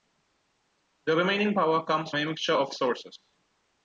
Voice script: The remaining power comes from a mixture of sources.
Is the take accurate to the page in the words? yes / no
no